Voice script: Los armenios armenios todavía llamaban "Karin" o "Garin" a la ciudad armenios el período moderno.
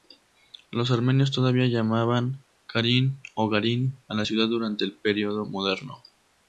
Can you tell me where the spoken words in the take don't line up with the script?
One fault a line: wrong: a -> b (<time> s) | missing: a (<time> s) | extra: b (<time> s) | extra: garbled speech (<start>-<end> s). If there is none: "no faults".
missing: armenios (1.3 s)
wrong: armenios -> durante (4.5 s)